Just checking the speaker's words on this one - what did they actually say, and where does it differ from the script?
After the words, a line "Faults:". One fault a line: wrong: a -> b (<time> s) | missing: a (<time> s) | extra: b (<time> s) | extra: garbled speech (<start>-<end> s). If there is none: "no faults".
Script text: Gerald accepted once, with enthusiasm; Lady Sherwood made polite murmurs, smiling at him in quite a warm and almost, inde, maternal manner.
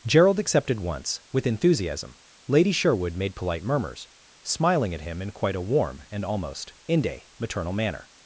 Gerald accepted once, with enthusiasm; Lady Sherwood made polite murmurs, smiling at him in quite a warm and almost, inde, maternal manner.
Faults:
no faults